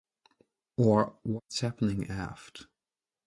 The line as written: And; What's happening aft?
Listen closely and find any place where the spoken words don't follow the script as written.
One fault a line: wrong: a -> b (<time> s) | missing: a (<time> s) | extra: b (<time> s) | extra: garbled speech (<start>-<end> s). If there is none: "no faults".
wrong: And -> Or (0.8 s)